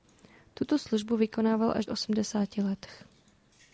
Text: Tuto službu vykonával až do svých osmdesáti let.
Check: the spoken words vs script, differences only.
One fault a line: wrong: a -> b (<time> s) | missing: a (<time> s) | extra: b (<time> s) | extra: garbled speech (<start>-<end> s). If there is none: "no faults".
missing: do svých (1.9 s)